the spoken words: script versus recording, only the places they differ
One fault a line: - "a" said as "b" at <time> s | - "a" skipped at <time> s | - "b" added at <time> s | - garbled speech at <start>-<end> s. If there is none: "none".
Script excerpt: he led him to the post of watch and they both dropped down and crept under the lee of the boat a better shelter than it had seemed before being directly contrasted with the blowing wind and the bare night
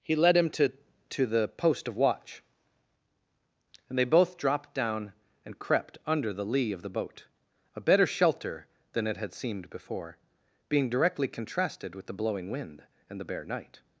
- "to" added at 1.1 s